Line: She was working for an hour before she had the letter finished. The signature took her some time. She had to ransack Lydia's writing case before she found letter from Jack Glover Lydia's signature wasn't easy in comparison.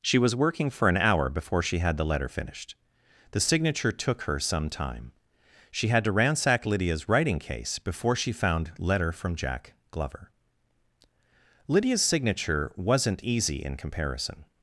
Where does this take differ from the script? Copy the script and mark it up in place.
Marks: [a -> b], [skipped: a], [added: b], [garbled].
She was working for an hour before she had the letter finished. The signature took her some time. She had to ransack Lydia's writing case before she found letter from Jack Glover Lydia's signature wasn't easy in comparison.